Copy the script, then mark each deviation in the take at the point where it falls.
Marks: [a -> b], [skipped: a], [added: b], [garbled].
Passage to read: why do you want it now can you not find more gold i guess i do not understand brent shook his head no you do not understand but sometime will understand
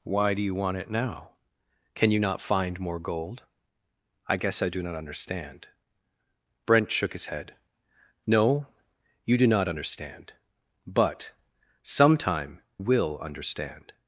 why do you want it now can you not find more gold i guess i do not understand brent shook his head no you do not understand but sometime will understand